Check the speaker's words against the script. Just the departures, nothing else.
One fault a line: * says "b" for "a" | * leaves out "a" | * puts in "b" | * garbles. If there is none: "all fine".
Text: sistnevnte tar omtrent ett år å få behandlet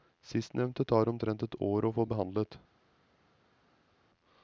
all fine